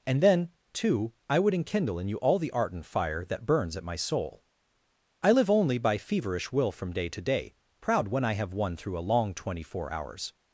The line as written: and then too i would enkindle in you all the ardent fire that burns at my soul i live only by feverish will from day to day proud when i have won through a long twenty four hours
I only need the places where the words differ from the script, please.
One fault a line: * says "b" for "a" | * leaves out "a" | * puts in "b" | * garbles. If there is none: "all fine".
all fine